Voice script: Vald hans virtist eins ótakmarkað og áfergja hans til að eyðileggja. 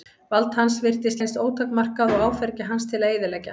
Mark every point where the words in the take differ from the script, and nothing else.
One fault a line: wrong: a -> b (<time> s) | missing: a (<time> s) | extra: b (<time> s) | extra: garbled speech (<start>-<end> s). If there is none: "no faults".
no faults